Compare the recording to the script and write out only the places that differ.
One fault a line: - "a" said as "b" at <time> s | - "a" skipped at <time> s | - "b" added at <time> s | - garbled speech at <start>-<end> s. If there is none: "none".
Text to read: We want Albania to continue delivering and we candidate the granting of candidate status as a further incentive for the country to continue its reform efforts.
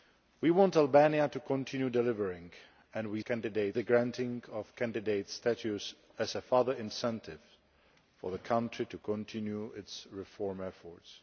none